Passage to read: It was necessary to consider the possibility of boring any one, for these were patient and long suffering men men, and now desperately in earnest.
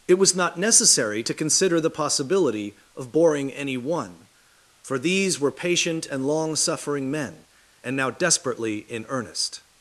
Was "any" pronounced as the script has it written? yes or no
yes